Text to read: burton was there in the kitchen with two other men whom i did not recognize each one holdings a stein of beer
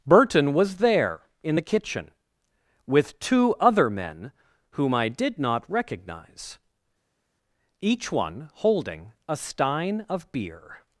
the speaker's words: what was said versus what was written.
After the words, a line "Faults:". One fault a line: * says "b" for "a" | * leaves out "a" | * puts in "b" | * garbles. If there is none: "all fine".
burton was there in the kitchen with two other men whom i did not recognize each one holding a stein of beer
Faults:
* says "holding" for "holdings"